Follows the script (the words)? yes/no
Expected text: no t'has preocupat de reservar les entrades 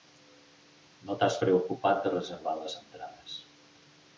yes